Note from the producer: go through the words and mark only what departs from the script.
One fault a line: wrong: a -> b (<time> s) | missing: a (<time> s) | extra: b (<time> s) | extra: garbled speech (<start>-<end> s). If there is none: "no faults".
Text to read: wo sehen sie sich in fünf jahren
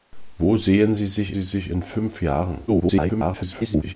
extra: sie sich (1.3 s)
extra: garbled speech (2.7-3.9 s)